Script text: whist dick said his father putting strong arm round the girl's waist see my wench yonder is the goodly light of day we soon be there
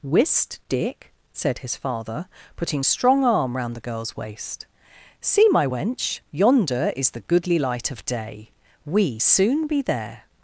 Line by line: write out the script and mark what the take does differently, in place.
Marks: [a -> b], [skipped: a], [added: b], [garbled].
whist dick said his father putting strong arm round the girl's waist see my wench yonder is the goodly light of day we soon be there